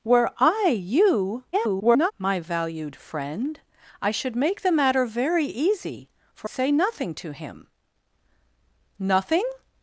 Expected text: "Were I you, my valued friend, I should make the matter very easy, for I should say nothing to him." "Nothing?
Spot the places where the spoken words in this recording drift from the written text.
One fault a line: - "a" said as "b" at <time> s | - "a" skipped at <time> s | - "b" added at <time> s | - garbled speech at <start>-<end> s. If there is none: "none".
- garbled speech at 1.5-2.1 s
- "I should" skipped at 6.5 s